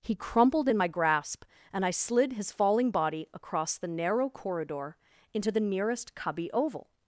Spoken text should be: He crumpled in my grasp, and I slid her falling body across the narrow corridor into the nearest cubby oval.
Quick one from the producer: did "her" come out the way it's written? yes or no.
no